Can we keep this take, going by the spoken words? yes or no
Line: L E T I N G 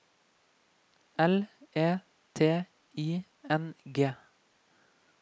yes